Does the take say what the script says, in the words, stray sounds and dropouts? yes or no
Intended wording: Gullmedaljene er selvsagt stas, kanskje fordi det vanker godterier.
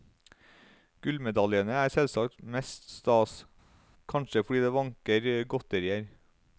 no